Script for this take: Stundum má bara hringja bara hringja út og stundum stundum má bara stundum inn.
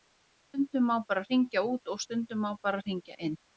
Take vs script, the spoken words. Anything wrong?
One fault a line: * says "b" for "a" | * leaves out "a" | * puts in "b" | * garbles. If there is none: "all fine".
* leaves out "bara hringja"
* leaves out "stundum"
* says "hringja" for "stundum"